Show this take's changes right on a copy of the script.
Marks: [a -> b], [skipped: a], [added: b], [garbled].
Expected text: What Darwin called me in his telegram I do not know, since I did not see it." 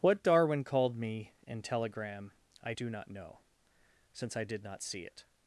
What Darwin called me in [skipped: his] telegram I do not know, since I did not see it."